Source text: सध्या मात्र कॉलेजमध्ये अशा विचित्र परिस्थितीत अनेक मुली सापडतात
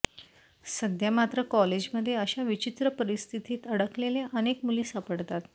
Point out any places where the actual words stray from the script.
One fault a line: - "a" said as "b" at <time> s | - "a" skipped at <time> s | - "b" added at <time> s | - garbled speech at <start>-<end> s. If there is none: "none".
- "अडकलेल्या" added at 3.7 s